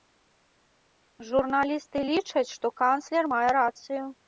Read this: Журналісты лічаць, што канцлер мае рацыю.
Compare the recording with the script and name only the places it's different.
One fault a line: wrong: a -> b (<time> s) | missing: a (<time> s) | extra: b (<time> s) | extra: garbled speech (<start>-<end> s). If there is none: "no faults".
no faults